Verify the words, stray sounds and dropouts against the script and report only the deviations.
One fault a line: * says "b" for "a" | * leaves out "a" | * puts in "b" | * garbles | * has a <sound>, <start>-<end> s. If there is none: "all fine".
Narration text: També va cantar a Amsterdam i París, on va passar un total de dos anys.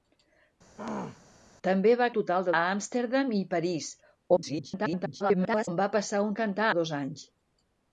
* has a throat clearing, 0.8-1.2 s
* says "total" for "cantar"
* garbles
* says "cantar" for "total"